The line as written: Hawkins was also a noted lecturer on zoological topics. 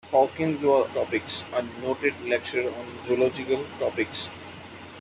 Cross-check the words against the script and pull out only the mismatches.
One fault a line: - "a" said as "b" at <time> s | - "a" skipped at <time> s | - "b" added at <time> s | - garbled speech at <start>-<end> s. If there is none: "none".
- "also" said as "topics" at 0.9 s